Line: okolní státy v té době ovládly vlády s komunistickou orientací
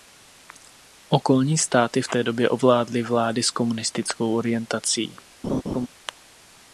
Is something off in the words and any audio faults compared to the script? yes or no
yes